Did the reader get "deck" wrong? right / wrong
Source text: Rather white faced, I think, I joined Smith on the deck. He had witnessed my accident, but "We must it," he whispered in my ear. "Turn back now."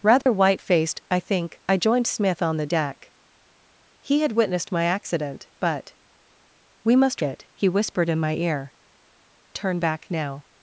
right